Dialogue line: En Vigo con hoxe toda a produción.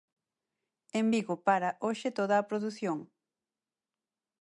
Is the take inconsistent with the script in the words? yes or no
yes